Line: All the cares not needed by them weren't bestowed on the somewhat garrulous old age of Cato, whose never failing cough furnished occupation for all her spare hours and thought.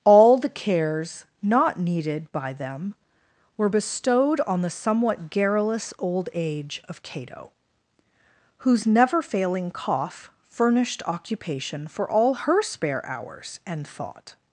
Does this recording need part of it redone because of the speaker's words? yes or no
yes